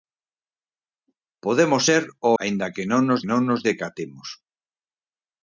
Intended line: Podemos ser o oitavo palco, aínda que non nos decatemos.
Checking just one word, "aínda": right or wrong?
wrong